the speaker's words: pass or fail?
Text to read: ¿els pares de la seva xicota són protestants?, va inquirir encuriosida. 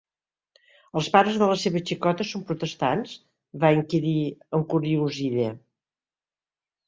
pass